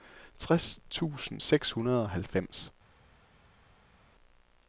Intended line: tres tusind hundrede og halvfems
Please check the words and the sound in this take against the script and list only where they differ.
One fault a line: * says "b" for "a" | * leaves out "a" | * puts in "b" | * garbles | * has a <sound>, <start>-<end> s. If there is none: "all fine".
* puts in "seks"